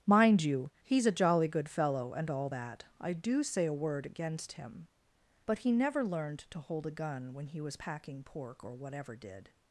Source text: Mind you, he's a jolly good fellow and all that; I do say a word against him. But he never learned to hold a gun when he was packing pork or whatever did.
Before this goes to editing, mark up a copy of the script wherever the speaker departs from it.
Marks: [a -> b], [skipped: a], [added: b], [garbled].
Mind you, he's a jolly good fellow and all that; I do say a word against him. But he never learned to hold a gun when he was packing pork or whatever did.